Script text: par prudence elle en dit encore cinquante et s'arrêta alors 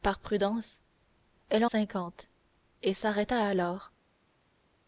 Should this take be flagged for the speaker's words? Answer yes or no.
yes